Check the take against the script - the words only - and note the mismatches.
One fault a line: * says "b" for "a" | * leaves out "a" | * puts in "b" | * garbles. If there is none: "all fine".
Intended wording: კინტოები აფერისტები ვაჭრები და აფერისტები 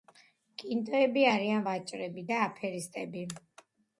* says "არიან" for "აფერისტები"